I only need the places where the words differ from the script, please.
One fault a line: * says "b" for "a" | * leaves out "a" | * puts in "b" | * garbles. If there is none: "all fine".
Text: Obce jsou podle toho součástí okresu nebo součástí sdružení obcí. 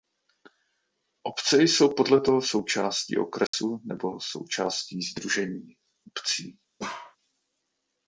all fine